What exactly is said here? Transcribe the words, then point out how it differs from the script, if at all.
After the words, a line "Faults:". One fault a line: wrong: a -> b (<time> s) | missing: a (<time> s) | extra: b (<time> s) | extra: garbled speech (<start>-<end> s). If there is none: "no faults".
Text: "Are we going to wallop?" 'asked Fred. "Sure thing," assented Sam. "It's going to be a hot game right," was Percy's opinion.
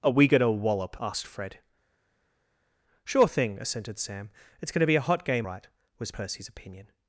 "Are we going to wallop?" 'asked Fred. "Sure thing," assented Sam. "It's going to be a hot game right," was Percy's opinion.
Faults:
no faults